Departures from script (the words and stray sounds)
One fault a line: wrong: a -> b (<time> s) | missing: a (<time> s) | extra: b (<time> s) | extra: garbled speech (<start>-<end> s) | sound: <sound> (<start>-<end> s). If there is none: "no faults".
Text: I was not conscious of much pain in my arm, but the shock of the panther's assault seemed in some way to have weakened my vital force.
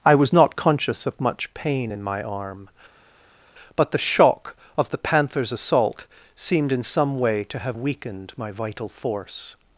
no faults